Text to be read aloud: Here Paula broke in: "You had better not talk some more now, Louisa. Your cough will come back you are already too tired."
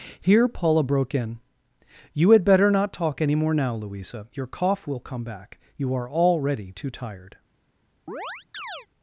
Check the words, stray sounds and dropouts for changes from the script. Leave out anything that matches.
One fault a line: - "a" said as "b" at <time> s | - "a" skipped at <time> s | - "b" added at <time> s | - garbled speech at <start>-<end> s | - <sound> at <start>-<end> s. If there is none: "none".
- "some" said as "any" at 3.2 s
- chirp at 8.1-8.9 s